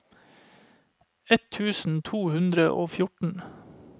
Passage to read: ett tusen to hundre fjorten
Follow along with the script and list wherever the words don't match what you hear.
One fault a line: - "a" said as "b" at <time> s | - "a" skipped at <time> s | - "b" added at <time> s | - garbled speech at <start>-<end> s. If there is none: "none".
- "og" added at 2.7 s